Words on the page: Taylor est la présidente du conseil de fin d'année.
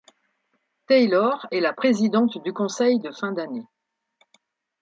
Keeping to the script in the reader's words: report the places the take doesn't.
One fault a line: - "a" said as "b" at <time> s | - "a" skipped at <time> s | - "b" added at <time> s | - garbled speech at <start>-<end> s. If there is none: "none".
none